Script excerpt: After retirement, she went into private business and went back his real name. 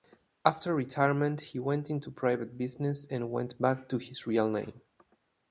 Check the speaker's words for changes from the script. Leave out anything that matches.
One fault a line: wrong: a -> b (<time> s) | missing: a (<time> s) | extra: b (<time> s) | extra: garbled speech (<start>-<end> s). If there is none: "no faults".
wrong: she -> he (1.4 s)
extra: to (3.9 s)